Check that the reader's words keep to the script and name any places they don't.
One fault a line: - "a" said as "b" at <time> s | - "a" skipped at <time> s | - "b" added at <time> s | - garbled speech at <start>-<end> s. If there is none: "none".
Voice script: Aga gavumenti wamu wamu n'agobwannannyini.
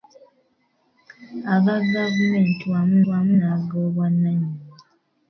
none